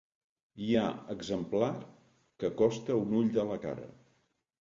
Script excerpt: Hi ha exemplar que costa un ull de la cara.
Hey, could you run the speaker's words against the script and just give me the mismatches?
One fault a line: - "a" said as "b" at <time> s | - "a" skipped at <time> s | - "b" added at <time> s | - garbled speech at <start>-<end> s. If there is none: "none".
none